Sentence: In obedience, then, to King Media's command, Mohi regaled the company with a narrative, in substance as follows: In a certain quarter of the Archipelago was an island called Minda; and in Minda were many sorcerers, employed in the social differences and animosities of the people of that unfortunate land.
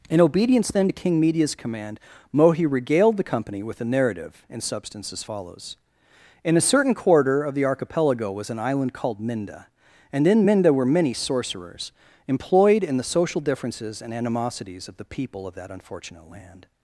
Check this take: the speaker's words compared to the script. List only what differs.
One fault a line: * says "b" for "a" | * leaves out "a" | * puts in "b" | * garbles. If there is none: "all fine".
all fine